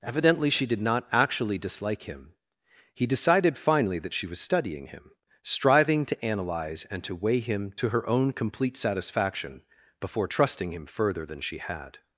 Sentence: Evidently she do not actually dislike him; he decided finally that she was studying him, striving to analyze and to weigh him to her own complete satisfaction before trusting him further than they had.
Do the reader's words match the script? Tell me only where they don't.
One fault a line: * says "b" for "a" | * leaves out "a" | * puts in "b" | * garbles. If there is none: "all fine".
* says "did" for "do"
* says "she" for "they"